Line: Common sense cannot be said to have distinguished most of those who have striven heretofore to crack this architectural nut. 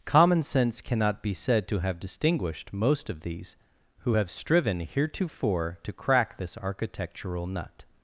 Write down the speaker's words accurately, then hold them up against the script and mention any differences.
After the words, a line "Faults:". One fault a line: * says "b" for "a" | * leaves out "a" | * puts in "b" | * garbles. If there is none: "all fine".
Common sense cannot be said to have distinguished most of these who have striven heretofore to crack this architectural nut.
Faults:
* says "these" for "those"